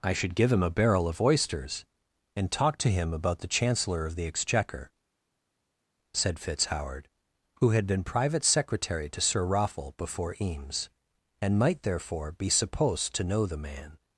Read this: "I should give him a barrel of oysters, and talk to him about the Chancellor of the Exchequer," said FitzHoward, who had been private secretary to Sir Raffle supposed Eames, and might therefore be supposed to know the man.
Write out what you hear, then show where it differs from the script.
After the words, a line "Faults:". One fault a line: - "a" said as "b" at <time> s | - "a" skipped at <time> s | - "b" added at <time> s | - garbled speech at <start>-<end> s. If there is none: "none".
"I should give him a barrel of oysters, and talk to him about the Chancellor of the Exchequer," said FitzHoward, who had been private secretary to Sir Raffle before Eames, and might therefore be supposed to know the man.
Faults:
- "supposed" said as "before" at 10.0 s